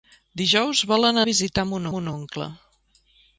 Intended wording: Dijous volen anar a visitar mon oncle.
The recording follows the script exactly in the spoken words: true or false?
false